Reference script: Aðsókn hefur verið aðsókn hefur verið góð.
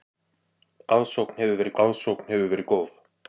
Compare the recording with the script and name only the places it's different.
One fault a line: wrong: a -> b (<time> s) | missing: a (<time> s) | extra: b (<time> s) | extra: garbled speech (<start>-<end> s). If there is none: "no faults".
no faults